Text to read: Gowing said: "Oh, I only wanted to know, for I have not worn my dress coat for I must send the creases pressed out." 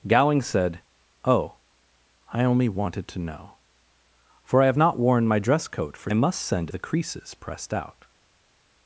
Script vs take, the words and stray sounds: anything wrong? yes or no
no